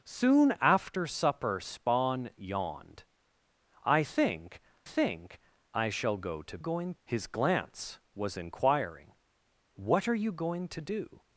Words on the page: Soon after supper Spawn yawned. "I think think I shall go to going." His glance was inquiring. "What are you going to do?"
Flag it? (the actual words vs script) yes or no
no